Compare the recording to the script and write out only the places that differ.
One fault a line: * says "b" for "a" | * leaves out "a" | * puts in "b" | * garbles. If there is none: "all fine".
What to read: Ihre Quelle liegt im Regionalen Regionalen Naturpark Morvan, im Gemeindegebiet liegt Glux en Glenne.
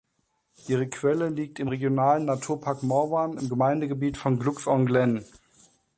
* leaves out "Regionalen"
* says "von" for "liegt"